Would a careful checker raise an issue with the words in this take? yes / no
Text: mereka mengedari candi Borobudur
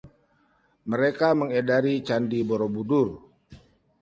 no